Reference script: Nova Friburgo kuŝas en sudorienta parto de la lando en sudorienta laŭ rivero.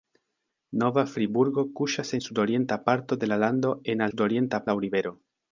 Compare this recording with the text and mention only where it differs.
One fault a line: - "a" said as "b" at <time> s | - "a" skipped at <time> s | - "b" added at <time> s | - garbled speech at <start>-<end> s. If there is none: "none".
none